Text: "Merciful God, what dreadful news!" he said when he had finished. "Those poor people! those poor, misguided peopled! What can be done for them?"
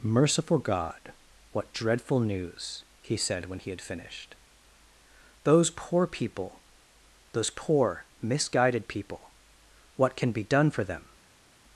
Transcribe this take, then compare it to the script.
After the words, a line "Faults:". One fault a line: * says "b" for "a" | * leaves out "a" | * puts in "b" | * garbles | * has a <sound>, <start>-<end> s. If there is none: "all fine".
"Merciful God, what dreadful news!" he said when he had finished. "Those poor people! those poor, misguided people! What can be done for them?"
Faults:
* says "people" for "peopled"